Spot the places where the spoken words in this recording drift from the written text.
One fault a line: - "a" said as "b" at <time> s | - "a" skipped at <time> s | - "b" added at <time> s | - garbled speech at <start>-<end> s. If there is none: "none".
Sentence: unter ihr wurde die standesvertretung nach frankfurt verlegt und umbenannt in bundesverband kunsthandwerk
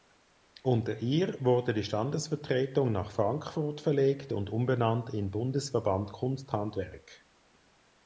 none